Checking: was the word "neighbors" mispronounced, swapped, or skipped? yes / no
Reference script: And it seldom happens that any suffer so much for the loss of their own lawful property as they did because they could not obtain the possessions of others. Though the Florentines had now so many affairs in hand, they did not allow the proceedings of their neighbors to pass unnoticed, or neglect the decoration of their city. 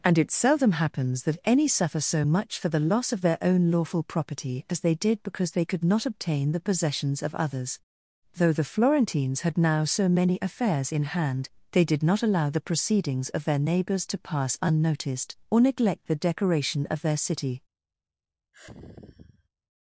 no